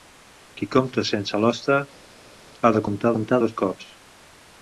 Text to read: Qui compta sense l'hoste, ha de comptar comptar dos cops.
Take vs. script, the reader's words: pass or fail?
pass